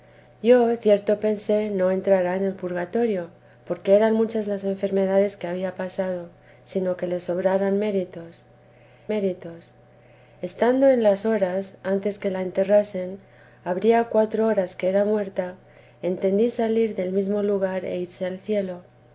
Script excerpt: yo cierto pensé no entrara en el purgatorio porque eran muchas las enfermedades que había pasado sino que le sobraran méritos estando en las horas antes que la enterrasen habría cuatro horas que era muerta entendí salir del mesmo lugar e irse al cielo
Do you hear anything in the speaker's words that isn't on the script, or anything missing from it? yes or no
yes